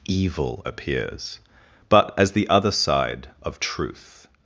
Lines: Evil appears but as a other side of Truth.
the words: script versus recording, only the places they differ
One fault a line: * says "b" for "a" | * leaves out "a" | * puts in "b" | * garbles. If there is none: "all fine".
* says "the" for "a"